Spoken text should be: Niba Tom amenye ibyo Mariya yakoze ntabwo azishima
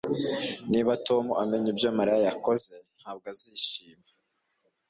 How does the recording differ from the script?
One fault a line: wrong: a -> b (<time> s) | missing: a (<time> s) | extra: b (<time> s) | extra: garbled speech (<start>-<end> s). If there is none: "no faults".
no faults